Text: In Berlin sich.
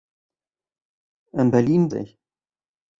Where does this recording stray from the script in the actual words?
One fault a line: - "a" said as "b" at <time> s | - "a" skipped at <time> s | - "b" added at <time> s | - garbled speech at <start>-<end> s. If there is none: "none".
none